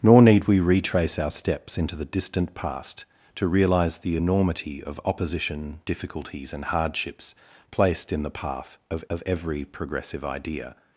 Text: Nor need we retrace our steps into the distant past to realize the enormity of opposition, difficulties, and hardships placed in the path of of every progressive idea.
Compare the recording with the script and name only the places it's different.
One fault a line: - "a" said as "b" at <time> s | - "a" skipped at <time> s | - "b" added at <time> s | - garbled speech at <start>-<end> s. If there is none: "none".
none